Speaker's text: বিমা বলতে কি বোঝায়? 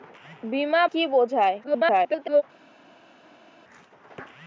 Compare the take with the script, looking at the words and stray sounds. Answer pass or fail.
fail